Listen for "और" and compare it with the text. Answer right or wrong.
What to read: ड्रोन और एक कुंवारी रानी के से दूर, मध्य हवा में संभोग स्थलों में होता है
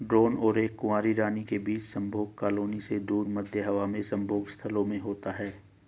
right